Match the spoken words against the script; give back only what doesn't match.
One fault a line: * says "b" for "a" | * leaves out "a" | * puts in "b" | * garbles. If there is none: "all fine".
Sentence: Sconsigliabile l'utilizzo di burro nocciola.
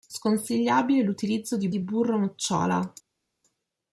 * puts in "di"